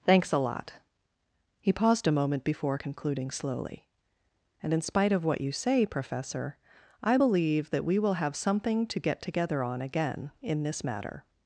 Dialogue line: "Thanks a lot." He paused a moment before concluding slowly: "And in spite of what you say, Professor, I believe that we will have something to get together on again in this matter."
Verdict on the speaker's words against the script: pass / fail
pass